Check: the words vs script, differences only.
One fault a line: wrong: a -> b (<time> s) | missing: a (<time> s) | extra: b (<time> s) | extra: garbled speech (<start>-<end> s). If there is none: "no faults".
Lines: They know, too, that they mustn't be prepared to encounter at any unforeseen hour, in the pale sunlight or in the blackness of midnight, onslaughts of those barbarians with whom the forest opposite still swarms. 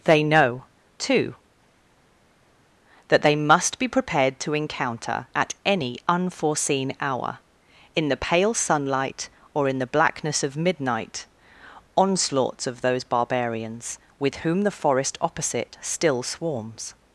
wrong: mustn't -> must (3.4 s)